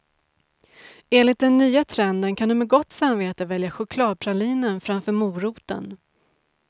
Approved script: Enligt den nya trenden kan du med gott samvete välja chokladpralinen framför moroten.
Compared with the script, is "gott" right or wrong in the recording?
right